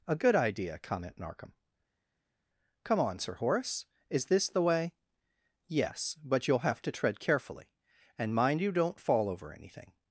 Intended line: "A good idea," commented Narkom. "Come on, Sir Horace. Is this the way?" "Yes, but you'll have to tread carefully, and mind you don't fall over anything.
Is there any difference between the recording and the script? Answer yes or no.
yes